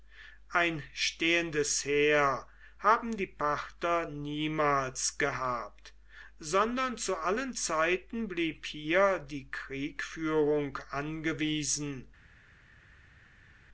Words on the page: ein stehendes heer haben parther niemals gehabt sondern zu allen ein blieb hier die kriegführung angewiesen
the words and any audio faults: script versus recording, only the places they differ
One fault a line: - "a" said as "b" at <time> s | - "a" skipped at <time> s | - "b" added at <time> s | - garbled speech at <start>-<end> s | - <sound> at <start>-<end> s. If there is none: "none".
- "die" added at 3.2 s
- "ein" said as "zeiten" at 7.5 s